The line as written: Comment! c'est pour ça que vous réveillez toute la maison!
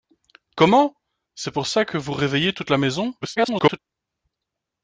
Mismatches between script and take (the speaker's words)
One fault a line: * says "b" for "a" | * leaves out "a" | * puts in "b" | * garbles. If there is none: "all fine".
* garbles